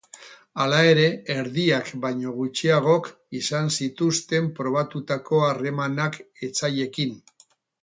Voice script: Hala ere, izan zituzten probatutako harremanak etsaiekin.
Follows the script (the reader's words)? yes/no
no